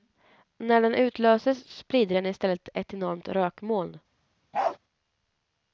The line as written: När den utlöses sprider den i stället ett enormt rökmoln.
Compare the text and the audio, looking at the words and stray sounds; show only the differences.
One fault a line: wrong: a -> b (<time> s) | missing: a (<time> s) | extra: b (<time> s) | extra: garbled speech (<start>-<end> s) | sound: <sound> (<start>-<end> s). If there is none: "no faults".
sound: bark (4.5-4.8 s)